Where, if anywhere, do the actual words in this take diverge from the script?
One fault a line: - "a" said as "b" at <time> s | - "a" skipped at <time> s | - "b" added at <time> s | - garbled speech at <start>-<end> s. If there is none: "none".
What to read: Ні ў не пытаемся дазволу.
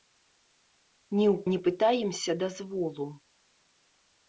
none